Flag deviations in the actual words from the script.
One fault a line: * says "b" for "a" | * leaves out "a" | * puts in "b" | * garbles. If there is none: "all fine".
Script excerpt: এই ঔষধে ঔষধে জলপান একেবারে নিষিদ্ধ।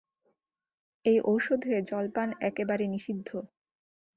* leaves out "ঔষধে"